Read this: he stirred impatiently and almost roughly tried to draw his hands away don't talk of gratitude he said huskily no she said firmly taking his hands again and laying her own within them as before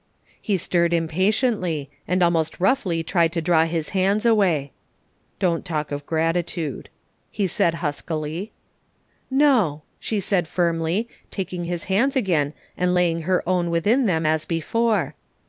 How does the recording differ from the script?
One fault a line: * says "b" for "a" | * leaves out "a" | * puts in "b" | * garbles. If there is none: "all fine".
all fine